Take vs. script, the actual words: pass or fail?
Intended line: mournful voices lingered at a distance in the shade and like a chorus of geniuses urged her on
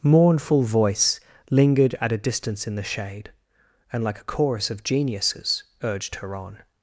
fail